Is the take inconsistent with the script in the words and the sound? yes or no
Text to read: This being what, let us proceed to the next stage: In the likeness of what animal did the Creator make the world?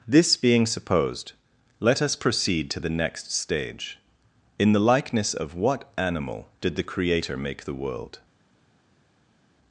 yes